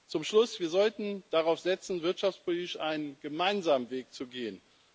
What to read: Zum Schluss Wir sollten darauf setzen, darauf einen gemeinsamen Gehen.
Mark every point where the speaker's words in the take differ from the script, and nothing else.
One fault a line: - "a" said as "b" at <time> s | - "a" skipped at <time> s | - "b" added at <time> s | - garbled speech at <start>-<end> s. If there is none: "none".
- "darauf" said as "wirtschaftspolitisch" at 2.0 s
- "Weg zu" added at 3.9 s